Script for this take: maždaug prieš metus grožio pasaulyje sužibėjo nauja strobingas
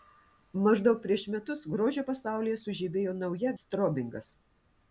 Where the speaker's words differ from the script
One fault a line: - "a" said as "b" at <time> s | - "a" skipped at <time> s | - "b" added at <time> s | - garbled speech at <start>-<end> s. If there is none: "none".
none